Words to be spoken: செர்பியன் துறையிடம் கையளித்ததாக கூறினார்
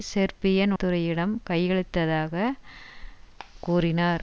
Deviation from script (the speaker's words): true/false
false